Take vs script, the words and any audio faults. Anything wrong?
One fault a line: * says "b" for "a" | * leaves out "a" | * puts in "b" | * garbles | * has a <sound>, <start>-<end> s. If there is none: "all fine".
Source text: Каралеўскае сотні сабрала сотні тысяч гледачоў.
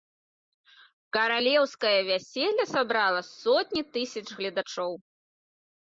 * says "вяселле" for "сотні"